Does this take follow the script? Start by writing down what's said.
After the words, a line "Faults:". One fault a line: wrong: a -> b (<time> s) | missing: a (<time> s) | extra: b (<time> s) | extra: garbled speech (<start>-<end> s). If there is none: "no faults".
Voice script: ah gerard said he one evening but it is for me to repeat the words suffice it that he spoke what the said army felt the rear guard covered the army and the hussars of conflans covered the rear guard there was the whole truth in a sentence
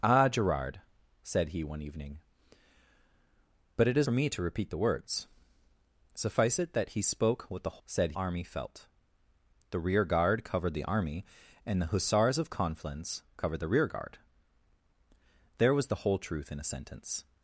ah gerard said he one evening but it is for me to repeat the words suffice it that he spoke what the said army felt the rear guard covered the army and the hussars of conflans covered the rear guard there was the whole truth in a sentence
Faults:
no faults